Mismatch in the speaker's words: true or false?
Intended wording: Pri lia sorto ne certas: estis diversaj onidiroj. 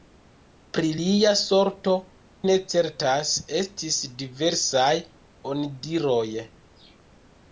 false